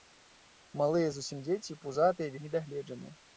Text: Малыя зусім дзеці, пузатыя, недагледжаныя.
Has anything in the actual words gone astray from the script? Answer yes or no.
no